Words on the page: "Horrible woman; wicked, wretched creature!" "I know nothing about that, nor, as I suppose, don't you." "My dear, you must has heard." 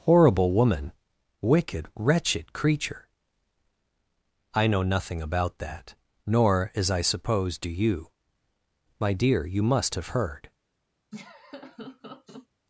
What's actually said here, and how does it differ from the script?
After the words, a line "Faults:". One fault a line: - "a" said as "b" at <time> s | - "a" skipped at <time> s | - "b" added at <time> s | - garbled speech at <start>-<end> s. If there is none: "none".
"Horrible woman; wicked, wretched creature!" "I know nothing about that, nor, as I suppose, do you." "My dear, you must have heard."
Faults:
- "don't" said as "do" at 7.6 s
- "has" said as "have" at 10.0 s